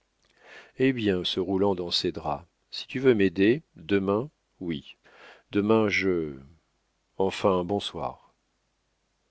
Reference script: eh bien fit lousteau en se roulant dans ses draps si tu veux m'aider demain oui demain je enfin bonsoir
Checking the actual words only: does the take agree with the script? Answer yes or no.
no